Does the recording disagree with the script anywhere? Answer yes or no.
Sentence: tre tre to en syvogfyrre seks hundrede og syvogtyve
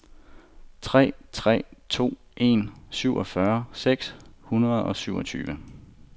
no